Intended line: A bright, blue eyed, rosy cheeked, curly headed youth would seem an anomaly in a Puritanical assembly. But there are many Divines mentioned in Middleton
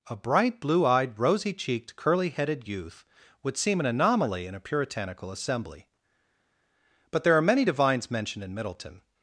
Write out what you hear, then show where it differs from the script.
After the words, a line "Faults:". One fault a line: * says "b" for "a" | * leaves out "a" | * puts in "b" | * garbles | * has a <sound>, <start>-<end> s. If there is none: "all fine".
A bright, blue eyed, rosy cheeked, curly headed youth would seem an anomaly in a Puritanical assembly. But there are many Divines mentioned in Middleton
Faults:
all fine